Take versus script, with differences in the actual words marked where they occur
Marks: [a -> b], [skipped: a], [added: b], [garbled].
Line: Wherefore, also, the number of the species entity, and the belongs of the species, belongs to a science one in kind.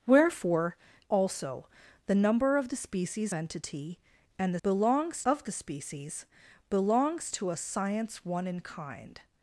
Wherefore, also, the number of the species entity, and the belongs of the species, belongs to a science one in kind.